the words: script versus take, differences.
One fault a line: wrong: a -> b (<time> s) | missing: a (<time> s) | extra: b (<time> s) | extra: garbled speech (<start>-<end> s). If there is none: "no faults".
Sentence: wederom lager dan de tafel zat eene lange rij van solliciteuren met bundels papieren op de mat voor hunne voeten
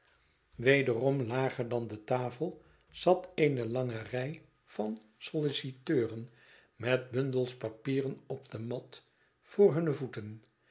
no faults